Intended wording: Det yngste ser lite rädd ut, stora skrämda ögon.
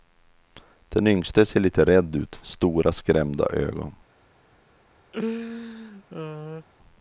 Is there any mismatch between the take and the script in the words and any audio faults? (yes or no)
yes